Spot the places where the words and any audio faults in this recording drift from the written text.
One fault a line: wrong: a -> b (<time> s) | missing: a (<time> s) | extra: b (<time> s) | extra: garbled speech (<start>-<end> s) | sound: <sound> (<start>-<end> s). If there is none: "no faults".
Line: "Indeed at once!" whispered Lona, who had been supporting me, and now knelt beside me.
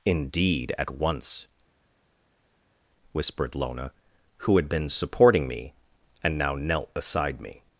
no faults